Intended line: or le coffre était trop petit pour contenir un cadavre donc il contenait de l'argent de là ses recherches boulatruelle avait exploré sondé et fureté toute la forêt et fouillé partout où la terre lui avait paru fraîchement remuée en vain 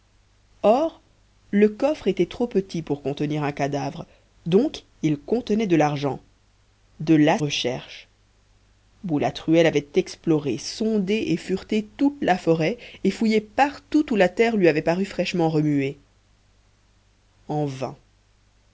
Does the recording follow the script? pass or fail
fail